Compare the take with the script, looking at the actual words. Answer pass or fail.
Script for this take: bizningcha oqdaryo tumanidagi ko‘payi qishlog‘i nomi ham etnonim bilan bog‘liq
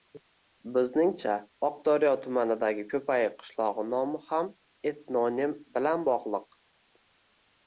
pass